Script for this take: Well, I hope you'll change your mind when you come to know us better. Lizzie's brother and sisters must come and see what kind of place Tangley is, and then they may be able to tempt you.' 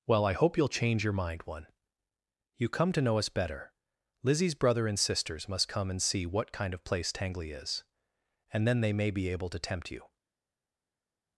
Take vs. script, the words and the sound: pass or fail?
fail